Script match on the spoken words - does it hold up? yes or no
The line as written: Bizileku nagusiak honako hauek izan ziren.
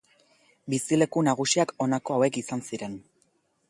yes